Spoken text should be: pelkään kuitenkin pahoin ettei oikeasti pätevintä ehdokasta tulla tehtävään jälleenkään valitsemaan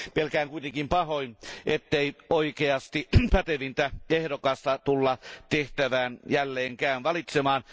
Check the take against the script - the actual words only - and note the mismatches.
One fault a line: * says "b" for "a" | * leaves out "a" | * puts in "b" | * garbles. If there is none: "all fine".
all fine